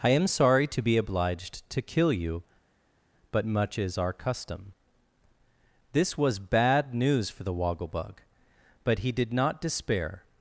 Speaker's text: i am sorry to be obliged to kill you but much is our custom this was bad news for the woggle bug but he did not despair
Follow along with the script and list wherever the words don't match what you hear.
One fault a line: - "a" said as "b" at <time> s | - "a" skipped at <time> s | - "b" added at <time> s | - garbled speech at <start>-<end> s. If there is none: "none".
none